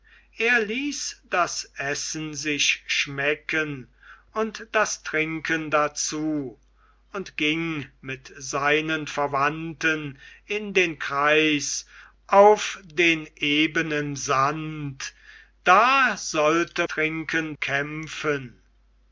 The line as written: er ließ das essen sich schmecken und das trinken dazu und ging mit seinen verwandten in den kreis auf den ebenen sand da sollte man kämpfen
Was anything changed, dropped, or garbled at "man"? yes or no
yes